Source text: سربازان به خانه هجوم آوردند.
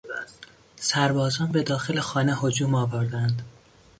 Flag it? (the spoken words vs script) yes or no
yes